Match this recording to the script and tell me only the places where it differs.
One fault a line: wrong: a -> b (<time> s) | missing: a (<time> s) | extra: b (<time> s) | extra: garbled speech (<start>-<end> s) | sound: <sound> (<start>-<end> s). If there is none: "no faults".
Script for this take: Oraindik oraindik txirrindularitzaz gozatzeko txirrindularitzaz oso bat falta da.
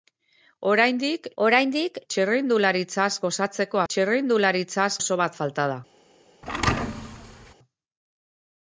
sound: thud (6.4-7.5 s)